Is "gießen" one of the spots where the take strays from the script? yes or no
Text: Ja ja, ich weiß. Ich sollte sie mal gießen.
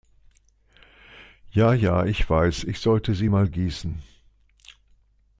no